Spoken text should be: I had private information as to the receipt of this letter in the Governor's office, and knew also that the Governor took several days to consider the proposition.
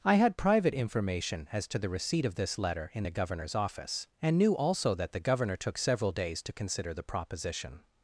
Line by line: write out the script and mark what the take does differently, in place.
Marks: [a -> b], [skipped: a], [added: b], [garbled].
I had private information as to the receipt of this letter in the Governor's office, and knew also that the Governor took several days to consider the proposition.